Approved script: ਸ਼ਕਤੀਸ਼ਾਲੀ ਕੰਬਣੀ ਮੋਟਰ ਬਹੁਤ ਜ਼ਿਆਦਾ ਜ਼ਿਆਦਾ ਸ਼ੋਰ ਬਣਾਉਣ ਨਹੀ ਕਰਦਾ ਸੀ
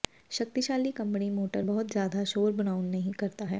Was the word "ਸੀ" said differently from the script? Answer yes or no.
yes